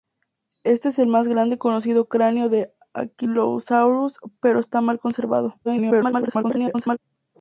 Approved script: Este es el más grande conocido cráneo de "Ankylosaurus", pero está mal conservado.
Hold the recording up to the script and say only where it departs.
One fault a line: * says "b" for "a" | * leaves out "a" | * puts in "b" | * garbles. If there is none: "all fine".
* garbles